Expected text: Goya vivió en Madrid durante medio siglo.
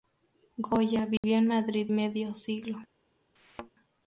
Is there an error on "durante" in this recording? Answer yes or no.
yes